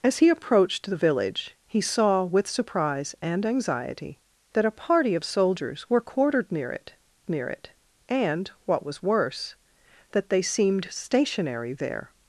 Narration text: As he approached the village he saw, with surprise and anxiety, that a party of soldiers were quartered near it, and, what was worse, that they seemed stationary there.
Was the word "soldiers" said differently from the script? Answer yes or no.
no